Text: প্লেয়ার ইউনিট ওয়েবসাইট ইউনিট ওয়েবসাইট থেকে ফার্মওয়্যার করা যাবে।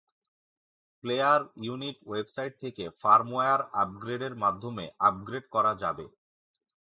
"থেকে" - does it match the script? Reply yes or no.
no